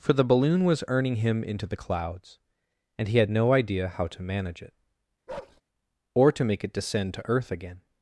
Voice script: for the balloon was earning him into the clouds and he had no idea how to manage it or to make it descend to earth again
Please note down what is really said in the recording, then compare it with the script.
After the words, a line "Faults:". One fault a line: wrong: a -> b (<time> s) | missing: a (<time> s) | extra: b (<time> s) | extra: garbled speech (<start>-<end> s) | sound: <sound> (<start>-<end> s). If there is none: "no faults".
for the balloon was earning him into the clouds and he had no idea how to manage it or to make it descend to earth again
Faults:
sound: bark (5.3-5.6 s)